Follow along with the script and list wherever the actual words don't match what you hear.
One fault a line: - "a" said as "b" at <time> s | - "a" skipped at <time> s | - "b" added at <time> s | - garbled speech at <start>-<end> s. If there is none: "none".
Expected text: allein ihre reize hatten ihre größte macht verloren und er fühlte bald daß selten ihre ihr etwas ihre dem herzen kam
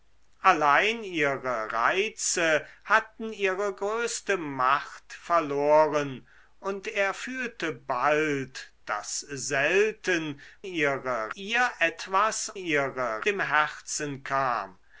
none